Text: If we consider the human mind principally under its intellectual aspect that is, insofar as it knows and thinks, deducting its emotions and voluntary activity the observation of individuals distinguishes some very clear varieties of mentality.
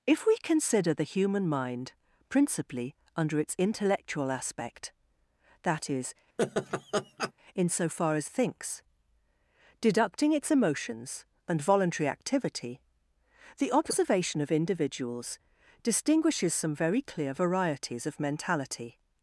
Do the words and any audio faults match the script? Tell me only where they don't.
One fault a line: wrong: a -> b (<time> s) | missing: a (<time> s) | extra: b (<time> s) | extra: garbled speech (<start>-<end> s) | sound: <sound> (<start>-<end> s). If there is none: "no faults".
sound: laugh (6.4-7.3 s)
missing: it knows and (8.3 s)